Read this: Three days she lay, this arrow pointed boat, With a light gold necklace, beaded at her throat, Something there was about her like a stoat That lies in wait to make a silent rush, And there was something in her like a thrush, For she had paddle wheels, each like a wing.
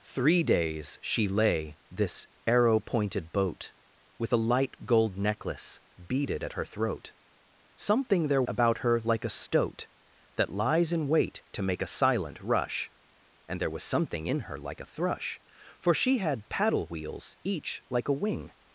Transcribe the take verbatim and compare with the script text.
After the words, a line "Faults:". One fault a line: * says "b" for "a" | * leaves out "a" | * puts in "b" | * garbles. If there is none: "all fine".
Three days she lay, this arrow pointed boat, With a light gold necklace, beaded at her throat, Something there about her like a stoat That lies in wait to make a silent rush, And there was something in her like a thrush, For she had paddle wheels, each like a wing.
Faults:
* leaves out "was"